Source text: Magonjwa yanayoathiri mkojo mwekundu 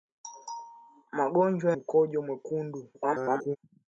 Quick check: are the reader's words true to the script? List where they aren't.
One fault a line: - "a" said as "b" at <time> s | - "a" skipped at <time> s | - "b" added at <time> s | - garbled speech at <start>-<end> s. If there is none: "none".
- "yanayoathiri" skipped at 1.7 s
- garbled speech at 2.9-3.6 s